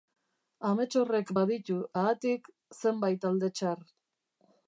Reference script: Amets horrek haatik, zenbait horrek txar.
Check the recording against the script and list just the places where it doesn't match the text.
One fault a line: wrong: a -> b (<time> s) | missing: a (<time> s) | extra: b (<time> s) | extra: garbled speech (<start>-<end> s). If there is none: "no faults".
extra: baditu (1.4 s)
wrong: horrek -> alde (3.3 s)